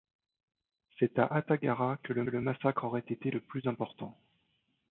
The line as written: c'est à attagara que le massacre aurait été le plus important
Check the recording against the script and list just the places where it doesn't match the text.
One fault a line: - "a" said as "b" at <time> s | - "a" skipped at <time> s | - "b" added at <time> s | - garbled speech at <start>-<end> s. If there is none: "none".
- "le" added at 2.3 s